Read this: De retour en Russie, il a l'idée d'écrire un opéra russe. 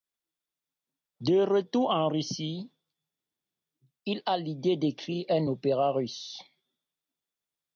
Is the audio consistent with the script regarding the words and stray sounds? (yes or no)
yes